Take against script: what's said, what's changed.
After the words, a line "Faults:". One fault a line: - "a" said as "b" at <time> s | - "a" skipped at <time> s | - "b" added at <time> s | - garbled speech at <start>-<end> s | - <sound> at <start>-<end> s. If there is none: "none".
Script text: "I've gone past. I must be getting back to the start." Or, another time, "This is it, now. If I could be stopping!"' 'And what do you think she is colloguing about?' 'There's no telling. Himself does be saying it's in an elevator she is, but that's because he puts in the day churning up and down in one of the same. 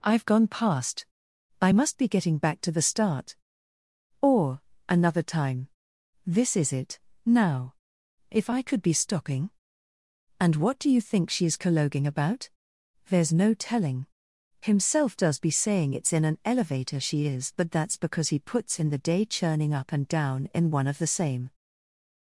"I've gone past. I must be getting back to the start." Or, another time, "This is it, now. If I could be stopping!"' 'And what do you think she is colloguing about?' 'There's no telling. Himself does be saying it's in an elevator she is, but that's because he puts in the day churning up and down in one of the same.
Faults:
none